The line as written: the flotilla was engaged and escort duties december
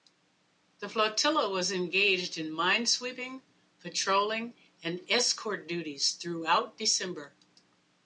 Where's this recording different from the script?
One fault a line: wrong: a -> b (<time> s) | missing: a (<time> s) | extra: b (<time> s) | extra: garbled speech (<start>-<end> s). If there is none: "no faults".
extra: in minesweeping patrolling (2.4 s)
extra: throughout (6.1 s)